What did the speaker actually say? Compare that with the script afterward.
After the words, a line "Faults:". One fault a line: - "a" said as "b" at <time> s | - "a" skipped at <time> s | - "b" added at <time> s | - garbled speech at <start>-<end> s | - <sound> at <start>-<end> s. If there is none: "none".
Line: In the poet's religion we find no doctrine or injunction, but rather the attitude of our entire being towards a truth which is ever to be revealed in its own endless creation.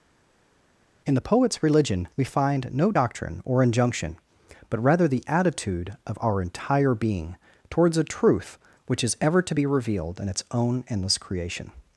In the poet's religion we find no doctrine or injunction, but rather the attitude of our entire being towards a truth which is ever to be revealed in its own endless creation.
Faults:
none